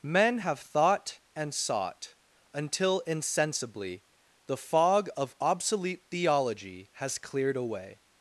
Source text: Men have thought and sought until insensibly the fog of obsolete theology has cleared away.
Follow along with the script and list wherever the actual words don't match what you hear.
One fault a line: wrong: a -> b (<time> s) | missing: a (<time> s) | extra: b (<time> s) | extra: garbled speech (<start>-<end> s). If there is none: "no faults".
no faults